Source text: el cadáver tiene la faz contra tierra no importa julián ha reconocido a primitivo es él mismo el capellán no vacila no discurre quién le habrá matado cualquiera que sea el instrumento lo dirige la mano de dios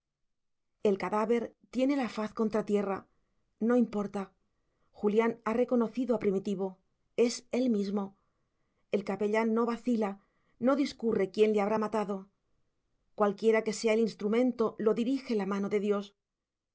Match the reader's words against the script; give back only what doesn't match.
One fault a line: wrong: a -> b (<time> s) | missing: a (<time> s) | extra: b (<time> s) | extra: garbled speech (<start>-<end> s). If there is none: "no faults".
no faults